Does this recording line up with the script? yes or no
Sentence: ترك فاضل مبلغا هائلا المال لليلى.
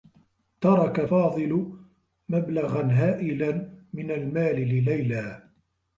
no